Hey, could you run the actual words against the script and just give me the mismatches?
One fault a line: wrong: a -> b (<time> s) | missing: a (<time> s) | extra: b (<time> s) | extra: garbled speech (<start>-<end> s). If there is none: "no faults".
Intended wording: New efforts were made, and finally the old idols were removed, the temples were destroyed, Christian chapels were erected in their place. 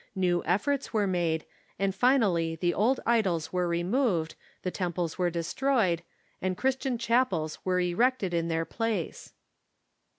extra: and (6.4 s)